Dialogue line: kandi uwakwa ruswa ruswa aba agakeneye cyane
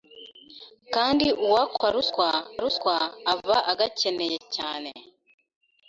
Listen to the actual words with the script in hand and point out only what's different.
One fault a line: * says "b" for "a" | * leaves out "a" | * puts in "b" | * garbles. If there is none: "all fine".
all fine